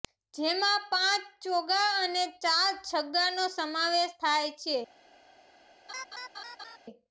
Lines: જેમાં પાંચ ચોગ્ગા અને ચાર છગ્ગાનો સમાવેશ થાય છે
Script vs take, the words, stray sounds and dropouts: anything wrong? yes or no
yes